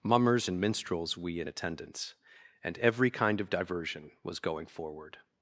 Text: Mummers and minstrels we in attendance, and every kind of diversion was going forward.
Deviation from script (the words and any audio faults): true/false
false